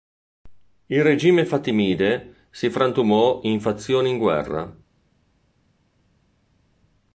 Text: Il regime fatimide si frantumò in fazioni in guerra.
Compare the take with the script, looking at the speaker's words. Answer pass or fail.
pass